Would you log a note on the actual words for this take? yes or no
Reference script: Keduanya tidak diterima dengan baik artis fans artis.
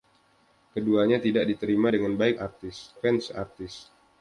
no